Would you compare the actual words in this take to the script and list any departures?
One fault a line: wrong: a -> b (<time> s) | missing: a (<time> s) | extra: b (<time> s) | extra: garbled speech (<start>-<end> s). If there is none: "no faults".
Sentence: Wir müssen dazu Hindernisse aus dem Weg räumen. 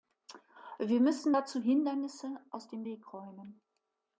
no faults